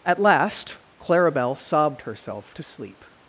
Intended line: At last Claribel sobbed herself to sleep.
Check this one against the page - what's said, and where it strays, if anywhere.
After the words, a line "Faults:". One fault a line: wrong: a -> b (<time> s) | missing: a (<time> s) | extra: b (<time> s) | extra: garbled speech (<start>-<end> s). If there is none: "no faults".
At last Claribel sobbed herself to sleep.
Faults:
no faults